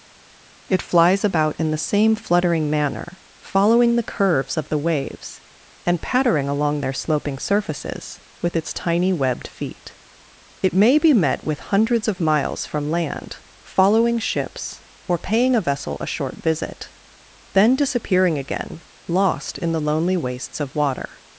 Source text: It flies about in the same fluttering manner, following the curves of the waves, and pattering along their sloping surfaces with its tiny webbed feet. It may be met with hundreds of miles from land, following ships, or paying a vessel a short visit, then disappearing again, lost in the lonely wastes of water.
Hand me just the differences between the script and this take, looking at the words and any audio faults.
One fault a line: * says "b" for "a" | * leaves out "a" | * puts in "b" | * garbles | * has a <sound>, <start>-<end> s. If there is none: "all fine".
all fine